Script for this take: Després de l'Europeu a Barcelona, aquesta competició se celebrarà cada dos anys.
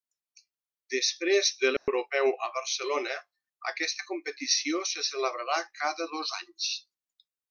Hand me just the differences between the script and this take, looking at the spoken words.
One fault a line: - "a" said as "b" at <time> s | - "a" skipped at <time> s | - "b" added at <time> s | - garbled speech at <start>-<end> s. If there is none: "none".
none